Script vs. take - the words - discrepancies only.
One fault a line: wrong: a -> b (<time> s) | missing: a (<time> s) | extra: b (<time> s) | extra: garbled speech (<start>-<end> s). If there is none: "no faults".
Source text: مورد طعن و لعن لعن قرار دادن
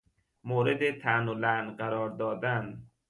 missing: لعن (1.8 s)